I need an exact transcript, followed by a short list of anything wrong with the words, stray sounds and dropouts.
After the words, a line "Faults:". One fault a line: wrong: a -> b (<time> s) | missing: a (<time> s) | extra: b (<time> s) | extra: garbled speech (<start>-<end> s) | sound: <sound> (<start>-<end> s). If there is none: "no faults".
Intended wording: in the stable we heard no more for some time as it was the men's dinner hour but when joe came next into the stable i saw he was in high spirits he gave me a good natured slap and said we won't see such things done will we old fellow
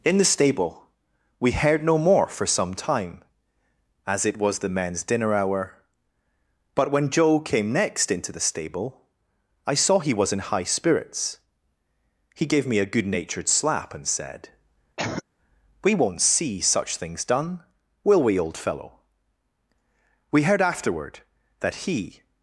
in the stable we heard no more for some time as it was the men's dinner hour but when joe came next into the stable i saw he was in high spirits he gave me a good natured slap and said we won't see such things done will we old fellow we heard afterward that he
Faults:
sound: cough (15.0-15.2 s)
extra: we heard afterward that he (20.3 s)